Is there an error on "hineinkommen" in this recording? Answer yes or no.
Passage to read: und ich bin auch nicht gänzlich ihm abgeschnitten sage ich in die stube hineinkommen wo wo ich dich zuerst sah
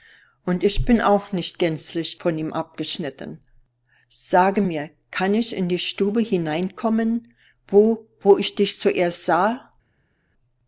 no